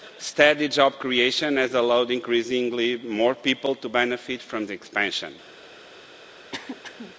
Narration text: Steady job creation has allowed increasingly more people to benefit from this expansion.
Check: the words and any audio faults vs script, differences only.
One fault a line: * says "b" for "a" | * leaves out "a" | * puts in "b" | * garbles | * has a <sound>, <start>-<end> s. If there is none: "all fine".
* leaves out "this"
* has a throat clearing, 6.5-7.2 s